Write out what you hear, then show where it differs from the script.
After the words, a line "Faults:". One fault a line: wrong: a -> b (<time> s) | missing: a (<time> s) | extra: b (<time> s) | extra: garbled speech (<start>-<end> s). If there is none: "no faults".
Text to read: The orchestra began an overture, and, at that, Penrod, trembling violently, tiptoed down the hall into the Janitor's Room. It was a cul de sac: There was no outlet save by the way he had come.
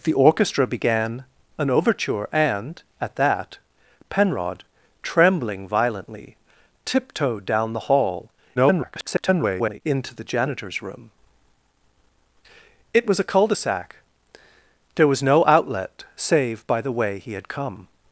The orchestra began an overture, and, at that, Penrod, trembling violently, tiptoed down the hall [garbled] into the Janitor's Room. It was a cul de sac: There was no outlet save by the way he had come.
Faults:
extra: garbled speech (8.6-9.8 s)